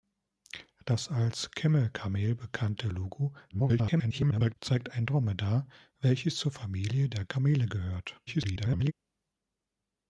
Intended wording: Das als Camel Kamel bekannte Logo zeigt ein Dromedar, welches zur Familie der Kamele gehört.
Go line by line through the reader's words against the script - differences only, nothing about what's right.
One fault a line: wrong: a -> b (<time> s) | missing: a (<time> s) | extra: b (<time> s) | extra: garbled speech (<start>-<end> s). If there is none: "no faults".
extra: garbled speech (3.5-4.5 s)
extra: garbled speech (8.3-8.9 s)